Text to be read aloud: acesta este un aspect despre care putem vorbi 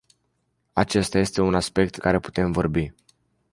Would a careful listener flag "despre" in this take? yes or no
yes